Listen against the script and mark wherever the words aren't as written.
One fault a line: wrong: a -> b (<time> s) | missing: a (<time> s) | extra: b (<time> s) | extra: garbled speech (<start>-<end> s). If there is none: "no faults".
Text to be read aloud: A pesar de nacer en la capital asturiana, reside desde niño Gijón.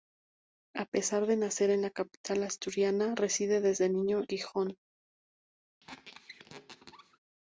no faults